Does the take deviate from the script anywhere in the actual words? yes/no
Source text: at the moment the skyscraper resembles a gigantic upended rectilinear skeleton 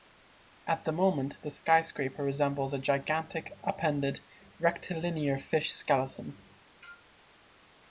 yes